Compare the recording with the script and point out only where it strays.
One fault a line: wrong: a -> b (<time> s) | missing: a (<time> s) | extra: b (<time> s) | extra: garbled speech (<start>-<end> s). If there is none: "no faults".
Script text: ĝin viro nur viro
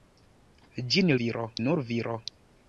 no faults